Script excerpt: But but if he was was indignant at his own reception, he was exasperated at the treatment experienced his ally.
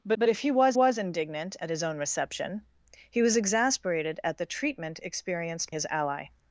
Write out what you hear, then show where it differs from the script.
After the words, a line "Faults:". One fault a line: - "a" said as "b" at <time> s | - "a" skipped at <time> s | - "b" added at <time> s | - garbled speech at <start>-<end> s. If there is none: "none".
But but if he was was indignant at his own reception, he was exasperated at the treatment experienced his ally.
Faults:
none